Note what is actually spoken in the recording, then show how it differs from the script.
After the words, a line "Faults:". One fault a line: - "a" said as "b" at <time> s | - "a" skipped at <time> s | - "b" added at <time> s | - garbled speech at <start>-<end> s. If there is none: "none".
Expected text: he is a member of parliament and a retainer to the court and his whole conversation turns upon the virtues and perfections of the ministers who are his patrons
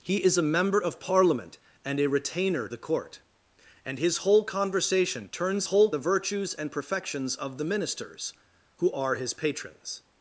he is a member of parliament and a retainer the court and his whole conversation turns whole the virtues and perfections of the ministers who are his patrons
Faults:
- "to" skipped at 2.7 s
- "upon" said as "whole" at 5.6 s